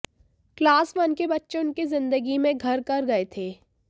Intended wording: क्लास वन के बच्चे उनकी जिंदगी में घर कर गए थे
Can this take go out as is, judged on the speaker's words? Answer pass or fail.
pass